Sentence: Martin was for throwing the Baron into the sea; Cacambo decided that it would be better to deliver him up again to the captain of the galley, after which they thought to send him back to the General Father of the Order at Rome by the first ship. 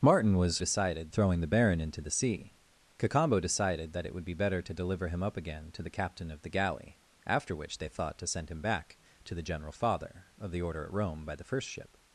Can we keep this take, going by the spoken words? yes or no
no